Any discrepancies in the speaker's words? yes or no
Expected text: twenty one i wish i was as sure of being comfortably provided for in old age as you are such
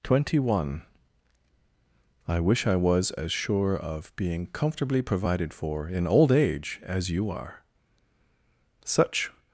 no